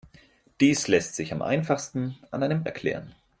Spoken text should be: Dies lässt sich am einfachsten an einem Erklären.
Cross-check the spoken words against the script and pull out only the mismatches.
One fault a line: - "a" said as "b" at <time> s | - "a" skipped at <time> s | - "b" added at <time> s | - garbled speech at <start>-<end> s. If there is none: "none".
none